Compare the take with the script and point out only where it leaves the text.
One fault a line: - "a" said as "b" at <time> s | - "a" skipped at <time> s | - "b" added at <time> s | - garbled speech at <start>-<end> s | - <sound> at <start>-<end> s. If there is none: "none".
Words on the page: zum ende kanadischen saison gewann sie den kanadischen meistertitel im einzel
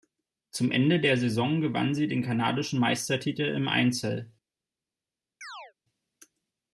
- "kanadischen" said as "der" at 1.0 s
- chirp at 5.4-5.7 s